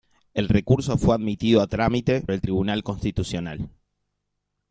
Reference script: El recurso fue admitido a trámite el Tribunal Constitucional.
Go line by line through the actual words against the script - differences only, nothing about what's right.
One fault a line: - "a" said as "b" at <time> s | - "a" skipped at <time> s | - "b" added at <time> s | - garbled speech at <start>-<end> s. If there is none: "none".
none